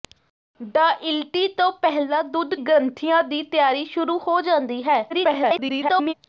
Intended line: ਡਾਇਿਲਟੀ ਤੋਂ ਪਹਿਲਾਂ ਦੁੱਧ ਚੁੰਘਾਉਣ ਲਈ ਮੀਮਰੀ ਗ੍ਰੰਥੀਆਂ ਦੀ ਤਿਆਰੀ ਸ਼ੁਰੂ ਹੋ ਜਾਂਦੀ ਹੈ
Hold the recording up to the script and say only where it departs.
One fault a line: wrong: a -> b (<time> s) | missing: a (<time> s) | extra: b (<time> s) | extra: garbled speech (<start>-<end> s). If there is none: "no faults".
missing: ਚੁੰਘਾਉਣ ਲਈ ਮੀਮਰੀ (2.5 s)
extra: garbled speech (5.1-6.1 s)